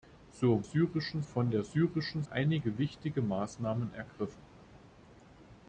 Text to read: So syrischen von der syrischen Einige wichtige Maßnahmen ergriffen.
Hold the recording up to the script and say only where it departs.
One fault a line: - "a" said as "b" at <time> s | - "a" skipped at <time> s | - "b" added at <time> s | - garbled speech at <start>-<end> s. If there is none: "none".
none